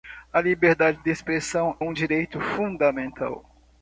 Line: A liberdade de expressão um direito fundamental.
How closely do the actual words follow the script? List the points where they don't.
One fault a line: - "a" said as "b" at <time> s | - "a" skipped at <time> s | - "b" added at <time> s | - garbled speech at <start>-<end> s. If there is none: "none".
none